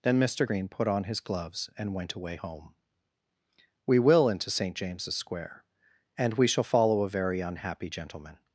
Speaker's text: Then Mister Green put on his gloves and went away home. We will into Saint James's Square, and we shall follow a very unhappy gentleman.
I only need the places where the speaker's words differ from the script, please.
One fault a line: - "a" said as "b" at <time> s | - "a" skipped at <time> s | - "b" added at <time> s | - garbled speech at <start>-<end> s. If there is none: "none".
none